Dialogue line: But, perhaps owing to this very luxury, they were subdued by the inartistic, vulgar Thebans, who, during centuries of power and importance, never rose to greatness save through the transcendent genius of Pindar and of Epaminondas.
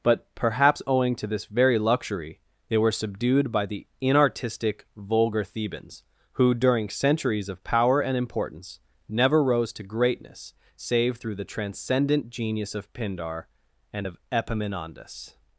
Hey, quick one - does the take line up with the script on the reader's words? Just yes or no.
yes